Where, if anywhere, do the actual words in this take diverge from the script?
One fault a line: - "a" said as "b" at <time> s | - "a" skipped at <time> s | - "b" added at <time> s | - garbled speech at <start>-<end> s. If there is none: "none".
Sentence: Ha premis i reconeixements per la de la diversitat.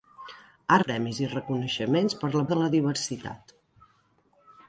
none